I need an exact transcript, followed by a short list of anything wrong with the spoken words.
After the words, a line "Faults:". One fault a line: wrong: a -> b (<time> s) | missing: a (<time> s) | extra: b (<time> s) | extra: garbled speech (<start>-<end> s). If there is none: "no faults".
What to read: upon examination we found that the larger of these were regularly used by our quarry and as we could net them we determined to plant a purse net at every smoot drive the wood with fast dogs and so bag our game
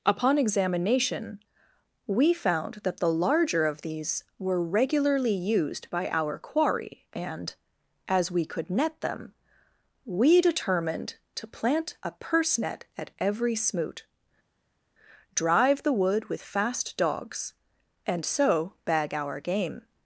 upon examination we found that the larger of these were regularly used by our quarry and as we could net them we determined to plant a purse net at every smoot drive the wood with fast dogs and so bag our game
Faults:
no faults